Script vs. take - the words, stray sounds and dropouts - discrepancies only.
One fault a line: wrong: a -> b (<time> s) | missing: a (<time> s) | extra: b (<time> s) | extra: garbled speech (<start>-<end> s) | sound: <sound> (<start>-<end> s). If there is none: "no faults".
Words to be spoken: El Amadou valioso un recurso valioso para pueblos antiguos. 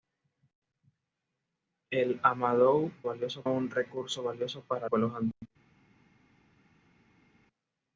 no faults